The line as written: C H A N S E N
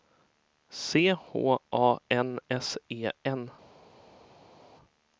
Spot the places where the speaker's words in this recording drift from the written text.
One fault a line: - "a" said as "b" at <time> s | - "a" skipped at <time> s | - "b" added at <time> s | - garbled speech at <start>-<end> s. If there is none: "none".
none